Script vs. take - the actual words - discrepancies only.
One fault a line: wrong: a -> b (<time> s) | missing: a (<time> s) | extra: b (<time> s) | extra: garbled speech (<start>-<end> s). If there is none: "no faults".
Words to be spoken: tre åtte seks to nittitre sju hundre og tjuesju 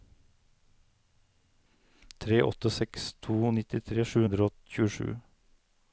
no faults